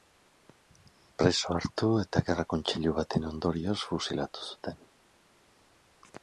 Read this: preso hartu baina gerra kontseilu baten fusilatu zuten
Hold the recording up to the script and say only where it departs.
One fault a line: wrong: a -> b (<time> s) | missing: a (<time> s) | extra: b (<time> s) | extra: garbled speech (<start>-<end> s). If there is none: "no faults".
wrong: baina -> eta (2.0 s)
extra: ondorioz (3.3 s)